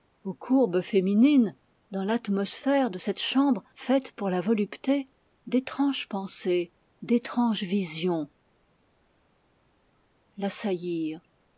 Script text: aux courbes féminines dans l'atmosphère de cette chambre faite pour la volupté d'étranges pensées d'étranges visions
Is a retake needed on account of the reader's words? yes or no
no